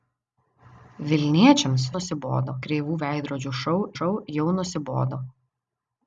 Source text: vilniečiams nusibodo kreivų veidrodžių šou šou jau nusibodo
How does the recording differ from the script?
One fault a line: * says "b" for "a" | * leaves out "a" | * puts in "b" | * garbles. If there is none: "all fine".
all fine